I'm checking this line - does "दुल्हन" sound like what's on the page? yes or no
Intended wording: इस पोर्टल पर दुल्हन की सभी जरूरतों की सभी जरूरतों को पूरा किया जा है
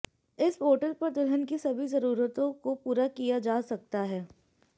yes